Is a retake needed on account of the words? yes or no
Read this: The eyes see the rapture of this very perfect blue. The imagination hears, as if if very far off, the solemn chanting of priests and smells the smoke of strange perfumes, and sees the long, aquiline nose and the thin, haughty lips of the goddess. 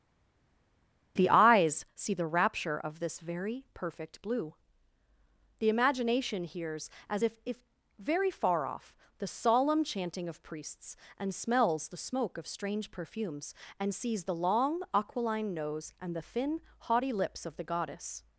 no